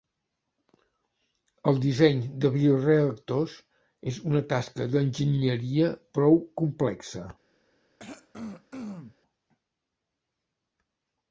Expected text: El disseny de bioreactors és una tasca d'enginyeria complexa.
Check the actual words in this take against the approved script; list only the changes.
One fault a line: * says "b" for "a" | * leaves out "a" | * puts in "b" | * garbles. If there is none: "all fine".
* puts in "prou"